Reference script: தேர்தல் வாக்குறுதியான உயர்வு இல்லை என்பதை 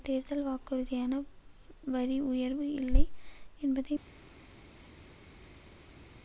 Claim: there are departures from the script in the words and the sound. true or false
true